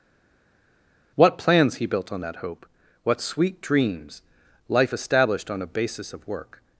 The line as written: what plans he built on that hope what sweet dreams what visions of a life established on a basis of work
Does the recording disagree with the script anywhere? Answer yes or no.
yes